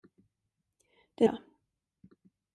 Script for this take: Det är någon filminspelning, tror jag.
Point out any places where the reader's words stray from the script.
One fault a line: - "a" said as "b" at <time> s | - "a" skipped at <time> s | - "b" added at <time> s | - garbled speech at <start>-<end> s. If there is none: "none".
- "någon filminspelning tror" skipped at 1.3 s